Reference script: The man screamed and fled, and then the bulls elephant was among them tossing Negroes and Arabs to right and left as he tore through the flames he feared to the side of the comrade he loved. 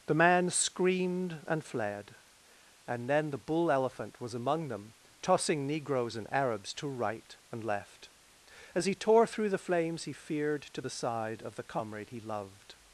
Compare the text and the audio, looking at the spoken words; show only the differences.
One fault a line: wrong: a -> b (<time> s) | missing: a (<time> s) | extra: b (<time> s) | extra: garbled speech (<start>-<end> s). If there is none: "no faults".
wrong: bulls -> bull (3.4 s)